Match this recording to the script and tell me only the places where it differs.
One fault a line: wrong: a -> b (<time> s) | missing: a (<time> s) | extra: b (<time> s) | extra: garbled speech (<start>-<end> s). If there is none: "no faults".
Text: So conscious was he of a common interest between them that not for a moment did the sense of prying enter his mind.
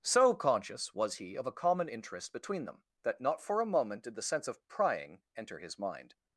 no faults